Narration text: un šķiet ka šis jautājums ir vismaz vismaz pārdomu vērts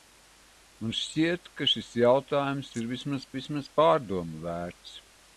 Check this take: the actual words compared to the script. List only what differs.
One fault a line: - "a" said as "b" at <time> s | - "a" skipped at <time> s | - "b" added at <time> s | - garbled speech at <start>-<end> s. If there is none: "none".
none